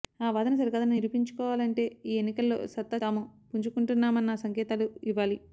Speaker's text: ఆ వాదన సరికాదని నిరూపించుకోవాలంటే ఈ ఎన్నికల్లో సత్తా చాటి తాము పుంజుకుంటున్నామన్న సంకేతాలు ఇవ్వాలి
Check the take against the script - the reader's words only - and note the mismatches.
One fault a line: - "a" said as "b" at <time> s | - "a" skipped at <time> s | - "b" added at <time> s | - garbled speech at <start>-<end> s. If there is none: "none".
- "చాటి" skipped at 3.0 s